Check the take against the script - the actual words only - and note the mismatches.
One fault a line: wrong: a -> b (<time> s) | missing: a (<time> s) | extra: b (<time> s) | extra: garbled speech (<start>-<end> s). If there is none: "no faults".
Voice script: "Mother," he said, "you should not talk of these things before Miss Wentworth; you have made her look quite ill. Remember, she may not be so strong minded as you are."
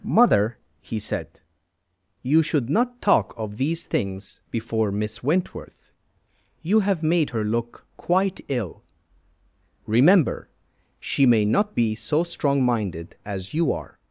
no faults